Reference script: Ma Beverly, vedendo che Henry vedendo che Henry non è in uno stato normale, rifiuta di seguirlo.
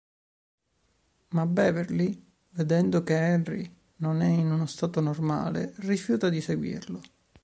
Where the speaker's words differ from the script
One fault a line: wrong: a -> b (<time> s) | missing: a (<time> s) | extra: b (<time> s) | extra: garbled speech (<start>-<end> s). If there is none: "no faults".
missing: vedendo che Henry (3.8 s)